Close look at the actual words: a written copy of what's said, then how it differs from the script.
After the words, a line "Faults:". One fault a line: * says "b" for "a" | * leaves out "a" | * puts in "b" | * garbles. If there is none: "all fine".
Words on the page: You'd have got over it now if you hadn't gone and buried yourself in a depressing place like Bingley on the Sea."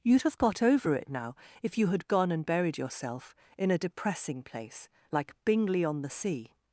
You'd have got over it now if you had gone and buried yourself in a depressing place like Bingley on the Sea."
Faults:
* says "had" for "hadn't"